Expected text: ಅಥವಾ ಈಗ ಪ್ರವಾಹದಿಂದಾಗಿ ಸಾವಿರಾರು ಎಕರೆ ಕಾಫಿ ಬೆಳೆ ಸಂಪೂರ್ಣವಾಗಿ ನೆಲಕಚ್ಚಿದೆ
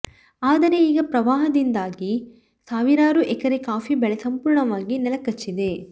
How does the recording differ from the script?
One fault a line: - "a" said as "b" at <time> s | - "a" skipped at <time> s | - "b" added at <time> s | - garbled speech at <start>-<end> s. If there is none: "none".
- "ಅಥವಾ" said as "ಆದರೆ" at 0.4 s